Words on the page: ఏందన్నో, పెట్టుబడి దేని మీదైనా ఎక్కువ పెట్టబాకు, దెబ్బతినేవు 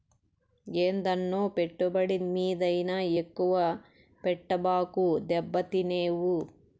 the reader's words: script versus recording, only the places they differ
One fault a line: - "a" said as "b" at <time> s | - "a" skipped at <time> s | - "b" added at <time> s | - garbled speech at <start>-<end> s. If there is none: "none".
- "దేని" skipped at 2.2 s